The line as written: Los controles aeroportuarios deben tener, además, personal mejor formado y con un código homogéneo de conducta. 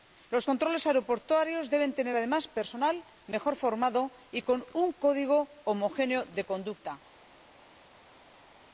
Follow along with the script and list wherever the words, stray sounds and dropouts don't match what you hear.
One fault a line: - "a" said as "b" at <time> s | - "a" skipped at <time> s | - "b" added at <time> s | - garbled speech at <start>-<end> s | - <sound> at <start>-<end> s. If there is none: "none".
none